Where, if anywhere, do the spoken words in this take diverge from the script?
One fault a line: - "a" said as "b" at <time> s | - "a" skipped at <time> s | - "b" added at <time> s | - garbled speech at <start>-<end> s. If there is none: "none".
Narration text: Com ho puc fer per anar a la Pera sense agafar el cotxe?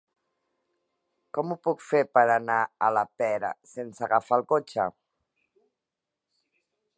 none